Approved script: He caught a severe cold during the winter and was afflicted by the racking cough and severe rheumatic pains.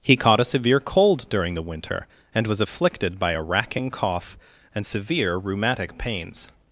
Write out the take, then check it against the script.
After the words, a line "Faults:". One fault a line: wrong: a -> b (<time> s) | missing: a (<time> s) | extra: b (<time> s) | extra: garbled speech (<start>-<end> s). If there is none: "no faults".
He caught a severe cold during the winter and was afflicted by a racking cough and severe rheumatic pains.
Faults:
wrong: the -> a (3.3 s)